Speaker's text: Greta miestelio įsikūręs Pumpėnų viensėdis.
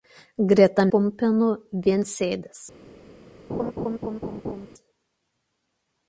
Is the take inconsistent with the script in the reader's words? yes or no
yes